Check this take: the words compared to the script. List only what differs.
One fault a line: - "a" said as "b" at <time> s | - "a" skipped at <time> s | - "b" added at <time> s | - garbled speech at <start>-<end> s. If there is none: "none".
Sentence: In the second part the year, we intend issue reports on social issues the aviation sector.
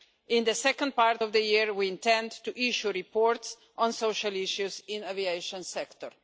- "of" added at 1.2 s
- "to" added at 2.4 s
- "in" added at 4.9 s